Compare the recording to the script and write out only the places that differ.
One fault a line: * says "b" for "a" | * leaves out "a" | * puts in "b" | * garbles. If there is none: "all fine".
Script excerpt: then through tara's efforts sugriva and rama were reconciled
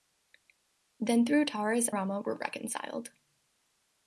* leaves out "efforts sugriva and"